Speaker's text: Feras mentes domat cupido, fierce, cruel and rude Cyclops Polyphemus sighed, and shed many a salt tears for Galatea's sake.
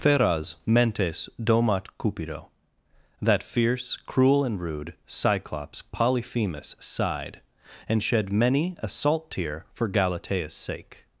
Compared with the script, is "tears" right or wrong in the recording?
wrong